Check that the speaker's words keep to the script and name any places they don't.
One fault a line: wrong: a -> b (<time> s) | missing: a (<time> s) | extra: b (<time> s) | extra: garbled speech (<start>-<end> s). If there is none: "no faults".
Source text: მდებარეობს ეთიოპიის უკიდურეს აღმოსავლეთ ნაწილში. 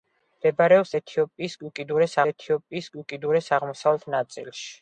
extra: ეთიოპიის უკიდურეს (2.3 s)